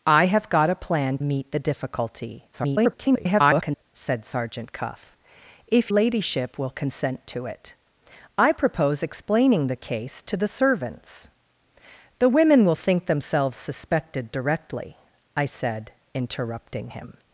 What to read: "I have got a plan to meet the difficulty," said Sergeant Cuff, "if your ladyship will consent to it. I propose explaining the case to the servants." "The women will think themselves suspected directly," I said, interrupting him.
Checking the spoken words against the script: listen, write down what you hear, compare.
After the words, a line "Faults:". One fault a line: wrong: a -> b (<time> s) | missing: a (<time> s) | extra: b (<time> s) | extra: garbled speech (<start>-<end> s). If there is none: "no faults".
"I have got a plan meet the difficulty," [garbled] said Sergeant Cuff, "if ladyship will consent to it. I propose explaining the case to the servants." "The women will think themselves suspected directly," I said, interrupting him.
Faults:
missing: to (1.2 s)
extra: garbled speech (2.5-3.8 s)
missing: your (5.9 s)